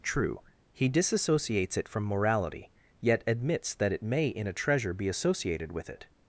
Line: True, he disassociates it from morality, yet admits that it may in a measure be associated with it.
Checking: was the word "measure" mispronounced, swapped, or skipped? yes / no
yes